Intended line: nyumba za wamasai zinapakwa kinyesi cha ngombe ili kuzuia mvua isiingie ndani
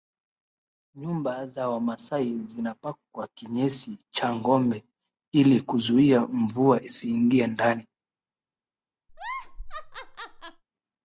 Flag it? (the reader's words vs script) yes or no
no